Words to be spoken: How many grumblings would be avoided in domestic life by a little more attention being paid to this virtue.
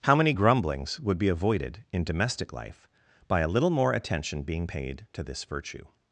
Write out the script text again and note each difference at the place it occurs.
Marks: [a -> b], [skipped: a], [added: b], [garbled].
How many grumblings would be avoided in domestic life by a little more attention being paid to this virtue.